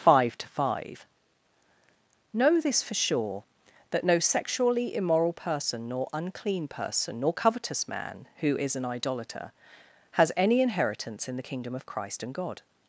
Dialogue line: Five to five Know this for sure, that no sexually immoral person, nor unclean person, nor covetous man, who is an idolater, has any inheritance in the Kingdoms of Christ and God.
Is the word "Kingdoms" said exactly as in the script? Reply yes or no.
no